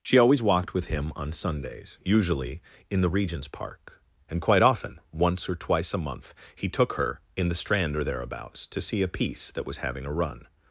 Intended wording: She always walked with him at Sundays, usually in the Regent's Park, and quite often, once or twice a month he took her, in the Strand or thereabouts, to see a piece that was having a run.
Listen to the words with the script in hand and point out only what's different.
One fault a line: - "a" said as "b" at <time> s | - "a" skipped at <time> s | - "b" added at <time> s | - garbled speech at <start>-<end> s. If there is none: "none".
- "at" said as "on" at 1.1 s